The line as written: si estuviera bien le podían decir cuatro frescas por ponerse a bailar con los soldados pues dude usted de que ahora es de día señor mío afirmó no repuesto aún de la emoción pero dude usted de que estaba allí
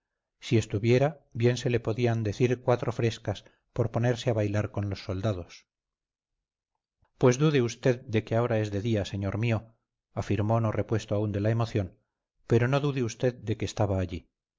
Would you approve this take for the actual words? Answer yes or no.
no